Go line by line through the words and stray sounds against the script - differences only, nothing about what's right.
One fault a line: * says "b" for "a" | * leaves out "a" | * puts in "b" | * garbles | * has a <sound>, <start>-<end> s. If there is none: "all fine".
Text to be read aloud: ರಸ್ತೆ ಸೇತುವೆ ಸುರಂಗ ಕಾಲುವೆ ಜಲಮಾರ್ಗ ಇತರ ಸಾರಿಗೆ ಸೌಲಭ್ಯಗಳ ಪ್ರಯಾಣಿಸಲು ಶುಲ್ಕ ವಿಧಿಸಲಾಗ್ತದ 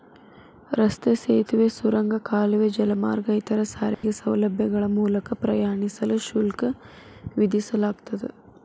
* has a dropout, 3.9-4.0 s
* puts in "ಮೂಲಕ"